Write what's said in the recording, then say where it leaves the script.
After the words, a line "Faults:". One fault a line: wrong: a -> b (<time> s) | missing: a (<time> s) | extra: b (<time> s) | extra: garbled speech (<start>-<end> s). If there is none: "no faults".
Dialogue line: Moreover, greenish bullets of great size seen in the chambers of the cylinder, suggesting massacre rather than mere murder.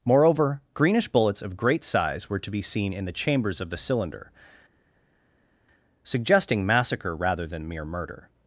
Moreover, greenish bullets of great size were to be seen in the chambers of the cylinder, suggesting massacre rather than mere murder.
Faults:
extra: were to be (2.3 s)